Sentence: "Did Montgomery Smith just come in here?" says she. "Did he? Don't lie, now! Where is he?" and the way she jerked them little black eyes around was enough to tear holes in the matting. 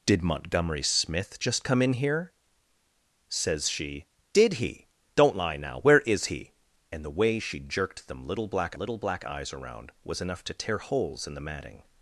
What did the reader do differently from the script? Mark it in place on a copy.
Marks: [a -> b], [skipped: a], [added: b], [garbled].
"Did Montgomery Smith just come in here?" says she. "Did he? Don't lie, now! Where is he?" and the way she jerked them little black [added: little black] eyes around was enough to tear holes in the matting.